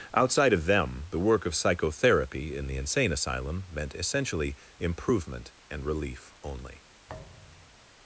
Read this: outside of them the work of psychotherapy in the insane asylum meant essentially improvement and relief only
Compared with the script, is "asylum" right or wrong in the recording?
right